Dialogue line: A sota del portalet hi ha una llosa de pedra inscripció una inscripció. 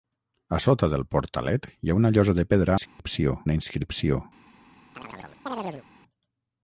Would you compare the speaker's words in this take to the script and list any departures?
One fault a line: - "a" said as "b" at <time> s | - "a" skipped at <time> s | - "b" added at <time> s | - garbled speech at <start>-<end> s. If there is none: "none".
none